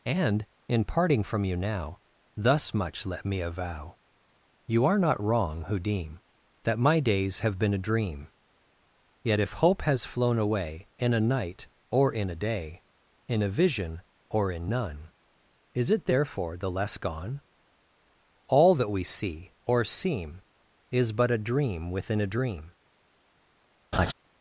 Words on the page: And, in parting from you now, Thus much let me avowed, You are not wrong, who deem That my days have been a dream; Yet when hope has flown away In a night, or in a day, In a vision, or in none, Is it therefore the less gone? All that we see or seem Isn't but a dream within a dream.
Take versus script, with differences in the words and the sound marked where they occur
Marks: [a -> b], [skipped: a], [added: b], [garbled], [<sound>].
And, in parting from you now, Thus much let me [avowed, -> avow] You are not wrong, who deem That my days have been a dream; Yet [when -> if] hope has flown away In a night, or in a day, In a vision, or in none, Is it therefore the less gone? All that we see or seem [Isn't -> Is] but a dream within a dream. [laugh]